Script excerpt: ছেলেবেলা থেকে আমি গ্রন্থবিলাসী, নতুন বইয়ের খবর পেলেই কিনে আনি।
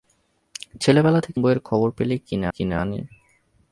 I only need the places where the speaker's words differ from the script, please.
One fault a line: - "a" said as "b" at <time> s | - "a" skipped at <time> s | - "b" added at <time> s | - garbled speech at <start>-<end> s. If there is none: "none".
- "আমি গ্রন্থবিলাসী নতুন" skipped at 1.4 s
- "কিনে" added at 2.5 s